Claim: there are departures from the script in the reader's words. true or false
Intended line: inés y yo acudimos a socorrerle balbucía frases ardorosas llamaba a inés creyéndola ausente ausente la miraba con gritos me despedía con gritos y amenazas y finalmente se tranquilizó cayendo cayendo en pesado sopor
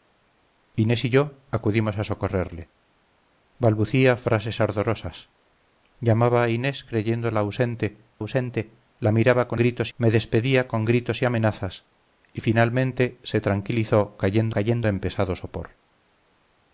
false